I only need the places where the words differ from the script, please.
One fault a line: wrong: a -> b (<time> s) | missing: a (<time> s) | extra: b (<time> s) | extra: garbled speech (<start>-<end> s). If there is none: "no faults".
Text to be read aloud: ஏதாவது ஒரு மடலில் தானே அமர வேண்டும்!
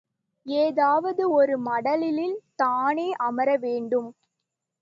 no faults